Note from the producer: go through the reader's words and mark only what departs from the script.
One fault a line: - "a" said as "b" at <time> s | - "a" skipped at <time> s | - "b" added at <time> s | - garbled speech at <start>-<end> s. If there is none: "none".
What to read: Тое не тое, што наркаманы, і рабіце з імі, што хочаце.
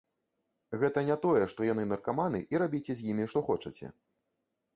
- "Тое" said as "Гэта" at 0.8 s
- "яны" added at 1.7 s